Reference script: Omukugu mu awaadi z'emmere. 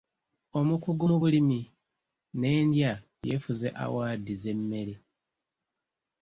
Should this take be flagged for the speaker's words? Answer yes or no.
yes